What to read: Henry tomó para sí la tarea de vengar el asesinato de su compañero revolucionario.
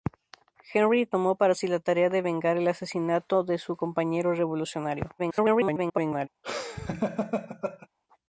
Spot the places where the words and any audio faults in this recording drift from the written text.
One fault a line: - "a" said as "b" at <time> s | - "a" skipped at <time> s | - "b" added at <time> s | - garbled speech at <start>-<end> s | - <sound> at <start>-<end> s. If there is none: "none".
- garbled speech at 5.2-6.3 s
- laugh at 6.4-7.9 s